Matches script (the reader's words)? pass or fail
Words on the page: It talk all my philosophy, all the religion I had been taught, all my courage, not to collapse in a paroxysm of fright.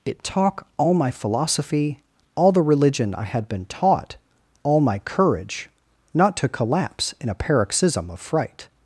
pass